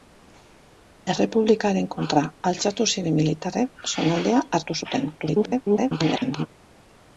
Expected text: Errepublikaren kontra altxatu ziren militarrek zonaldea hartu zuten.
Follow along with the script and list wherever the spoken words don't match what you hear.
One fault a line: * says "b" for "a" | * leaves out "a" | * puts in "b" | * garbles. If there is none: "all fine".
* garbles